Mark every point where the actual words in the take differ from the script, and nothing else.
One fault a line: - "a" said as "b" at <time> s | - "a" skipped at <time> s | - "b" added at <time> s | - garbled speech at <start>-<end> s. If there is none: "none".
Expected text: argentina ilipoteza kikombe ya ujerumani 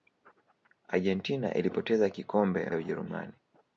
none